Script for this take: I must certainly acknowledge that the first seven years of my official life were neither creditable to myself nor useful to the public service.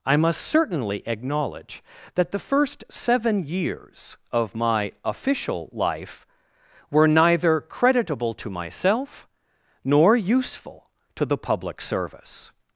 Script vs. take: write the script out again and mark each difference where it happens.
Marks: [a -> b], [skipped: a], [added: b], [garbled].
I must certainly acknowledge that the first seven years of my official life were neither creditable to myself nor useful to the public service.